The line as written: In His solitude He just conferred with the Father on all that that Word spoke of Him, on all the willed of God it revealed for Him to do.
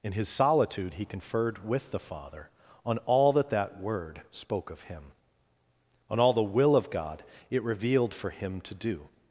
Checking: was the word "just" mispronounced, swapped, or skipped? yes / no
yes